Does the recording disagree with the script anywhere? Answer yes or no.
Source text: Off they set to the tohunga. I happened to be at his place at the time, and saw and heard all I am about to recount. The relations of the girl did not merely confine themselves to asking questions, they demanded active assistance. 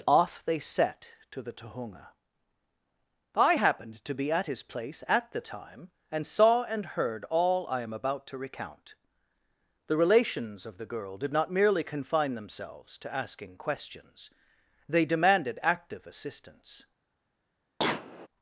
no